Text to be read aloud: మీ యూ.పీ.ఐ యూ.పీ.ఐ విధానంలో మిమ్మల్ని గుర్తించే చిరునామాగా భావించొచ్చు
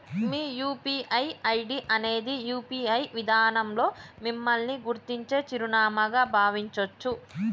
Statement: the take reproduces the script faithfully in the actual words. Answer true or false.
false